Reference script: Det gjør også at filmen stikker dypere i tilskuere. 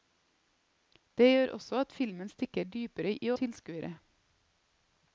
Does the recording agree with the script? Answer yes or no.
yes